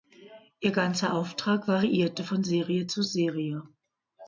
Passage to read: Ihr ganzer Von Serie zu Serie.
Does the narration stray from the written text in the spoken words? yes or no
yes